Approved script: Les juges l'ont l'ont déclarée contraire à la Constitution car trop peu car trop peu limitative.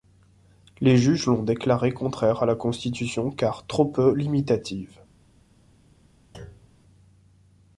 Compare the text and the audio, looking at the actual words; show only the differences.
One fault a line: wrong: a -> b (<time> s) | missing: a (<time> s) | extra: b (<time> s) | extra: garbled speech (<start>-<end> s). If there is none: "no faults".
missing: l'ont (1.4 s)
missing: car trop peu (4.2 s)